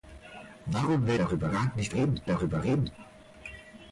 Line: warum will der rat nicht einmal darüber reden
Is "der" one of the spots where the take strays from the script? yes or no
yes